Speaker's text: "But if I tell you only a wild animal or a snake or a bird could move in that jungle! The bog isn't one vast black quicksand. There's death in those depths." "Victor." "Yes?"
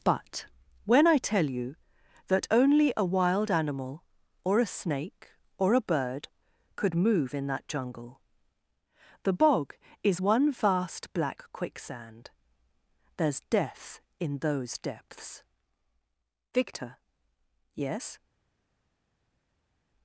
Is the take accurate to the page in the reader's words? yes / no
no